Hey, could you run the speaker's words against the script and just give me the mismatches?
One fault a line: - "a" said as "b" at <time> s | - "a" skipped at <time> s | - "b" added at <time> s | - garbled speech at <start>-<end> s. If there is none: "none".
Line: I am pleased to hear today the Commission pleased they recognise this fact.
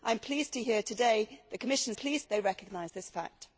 none